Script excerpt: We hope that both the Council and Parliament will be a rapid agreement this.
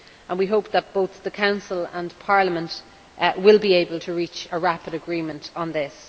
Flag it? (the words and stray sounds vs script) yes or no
yes